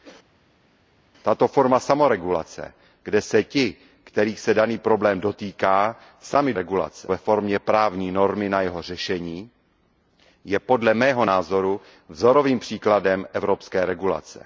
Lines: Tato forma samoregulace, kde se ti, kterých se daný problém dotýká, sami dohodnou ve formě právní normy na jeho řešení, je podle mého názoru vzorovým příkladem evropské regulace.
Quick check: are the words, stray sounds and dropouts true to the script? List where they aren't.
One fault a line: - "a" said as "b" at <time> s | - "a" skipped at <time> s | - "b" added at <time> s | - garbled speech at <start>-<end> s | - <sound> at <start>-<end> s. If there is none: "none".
- "dohodnou" said as "regulace" at 6.5 s